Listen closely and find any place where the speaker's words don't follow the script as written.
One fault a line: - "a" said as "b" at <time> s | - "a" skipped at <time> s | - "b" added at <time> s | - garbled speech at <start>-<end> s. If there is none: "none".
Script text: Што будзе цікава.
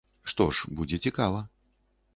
- "ж" added at 0.6 s